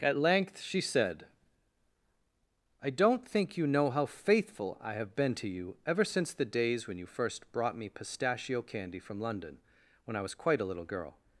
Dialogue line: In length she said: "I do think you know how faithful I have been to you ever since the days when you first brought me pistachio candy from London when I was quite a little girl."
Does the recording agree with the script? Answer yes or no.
no